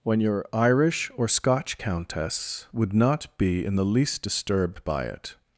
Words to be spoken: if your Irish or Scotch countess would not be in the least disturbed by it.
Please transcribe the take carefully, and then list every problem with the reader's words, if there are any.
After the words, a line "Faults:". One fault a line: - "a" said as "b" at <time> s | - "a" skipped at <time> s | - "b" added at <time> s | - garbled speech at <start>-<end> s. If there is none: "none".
when your Irish or Scotch countess would not be in the least disturbed by it.
Faults:
- "if" said as "when" at 0.0 s